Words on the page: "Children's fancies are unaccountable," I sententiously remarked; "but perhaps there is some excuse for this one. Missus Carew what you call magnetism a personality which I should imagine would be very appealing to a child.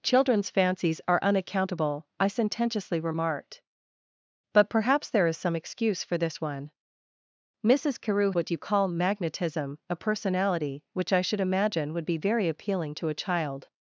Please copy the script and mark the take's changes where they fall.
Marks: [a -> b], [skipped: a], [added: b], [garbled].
"Children's fancies are unaccountable," I sententiously remarked; "but perhaps there is some excuse for this one. Missus Carew what you call magnetism a personality which I should imagine would be very appealing to a child.